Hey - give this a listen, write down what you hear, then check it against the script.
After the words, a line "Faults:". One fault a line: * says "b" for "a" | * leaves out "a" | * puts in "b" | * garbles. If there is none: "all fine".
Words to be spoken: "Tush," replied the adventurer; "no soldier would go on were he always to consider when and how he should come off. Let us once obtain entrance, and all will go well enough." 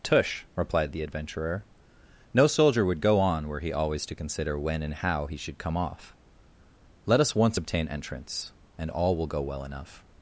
"Tush," replied the adventurer; "no soldier would go on were he always to consider when and how he should come off. Let us once obtain entrance, and all will go well enough."
Faults:
all fine